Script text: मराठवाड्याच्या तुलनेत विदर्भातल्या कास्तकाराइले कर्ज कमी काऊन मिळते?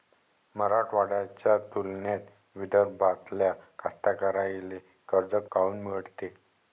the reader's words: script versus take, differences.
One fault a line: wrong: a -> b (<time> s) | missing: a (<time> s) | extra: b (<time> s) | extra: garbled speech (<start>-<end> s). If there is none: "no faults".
missing: कमी (5.3 s)